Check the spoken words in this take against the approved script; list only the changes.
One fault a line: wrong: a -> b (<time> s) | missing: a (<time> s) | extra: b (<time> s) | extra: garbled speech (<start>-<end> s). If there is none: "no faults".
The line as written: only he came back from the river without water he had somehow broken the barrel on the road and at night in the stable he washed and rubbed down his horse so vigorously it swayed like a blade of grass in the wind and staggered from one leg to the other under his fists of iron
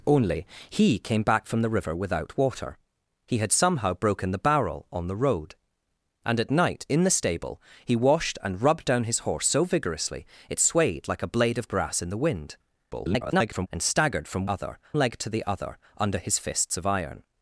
extra: garbled speech (12.9-13.7 s)
wrong: one -> other (14.5 s)